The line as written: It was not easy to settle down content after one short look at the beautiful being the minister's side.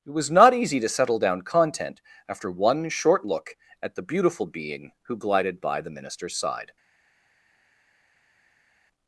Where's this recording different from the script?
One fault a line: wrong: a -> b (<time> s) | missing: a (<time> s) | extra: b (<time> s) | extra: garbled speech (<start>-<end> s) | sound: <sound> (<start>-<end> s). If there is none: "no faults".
extra: who glided by (5.0 s)